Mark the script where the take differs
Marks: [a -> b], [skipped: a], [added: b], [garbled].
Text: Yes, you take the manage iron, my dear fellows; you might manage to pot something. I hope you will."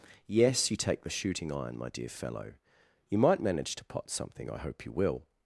Yes, you take the [manage -> shooting] iron, my dear [fellows; -> fellow] you might manage to pot something. I hope you will."